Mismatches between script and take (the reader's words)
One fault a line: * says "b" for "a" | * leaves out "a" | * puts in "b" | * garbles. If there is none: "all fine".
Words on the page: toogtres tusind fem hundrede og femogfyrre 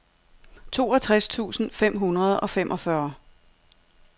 all fine